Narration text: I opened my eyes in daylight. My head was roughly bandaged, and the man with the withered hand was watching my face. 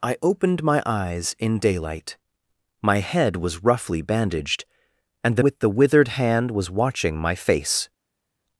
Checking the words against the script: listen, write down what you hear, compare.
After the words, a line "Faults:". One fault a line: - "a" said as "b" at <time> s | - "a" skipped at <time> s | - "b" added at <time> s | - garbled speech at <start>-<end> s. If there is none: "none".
I opened my eyes in daylight. My head was roughly bandaged, and the with the withered hand was watching my face.
Faults:
- "man" skipped at 5.4 s